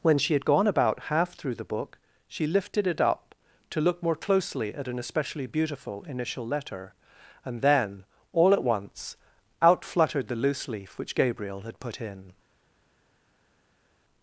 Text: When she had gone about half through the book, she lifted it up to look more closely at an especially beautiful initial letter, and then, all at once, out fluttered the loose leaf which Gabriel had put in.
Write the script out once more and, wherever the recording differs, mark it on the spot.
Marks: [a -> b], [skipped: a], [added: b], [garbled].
When she had gone about half through the book, she lifted it up to look more closely at an especially beautiful initial letter, and then, all at once, out fluttered the loose leaf which Gabriel had put in.